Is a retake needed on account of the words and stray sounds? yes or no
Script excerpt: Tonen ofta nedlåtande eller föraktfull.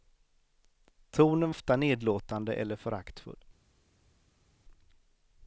no